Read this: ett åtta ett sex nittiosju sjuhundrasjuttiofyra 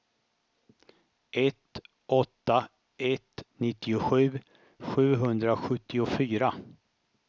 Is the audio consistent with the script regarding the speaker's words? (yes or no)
no